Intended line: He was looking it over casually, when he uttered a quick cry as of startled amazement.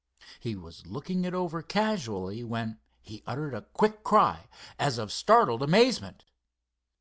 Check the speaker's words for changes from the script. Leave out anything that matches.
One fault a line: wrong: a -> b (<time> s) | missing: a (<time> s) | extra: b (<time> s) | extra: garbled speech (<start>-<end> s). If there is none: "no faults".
no faults